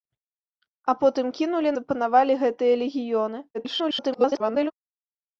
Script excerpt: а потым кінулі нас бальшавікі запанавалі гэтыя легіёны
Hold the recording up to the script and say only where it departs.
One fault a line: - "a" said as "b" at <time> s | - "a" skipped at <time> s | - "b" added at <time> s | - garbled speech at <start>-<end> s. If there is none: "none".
- "нас бальшавікі" skipped at 1.8 s
- garbled speech at 3.5-4.7 s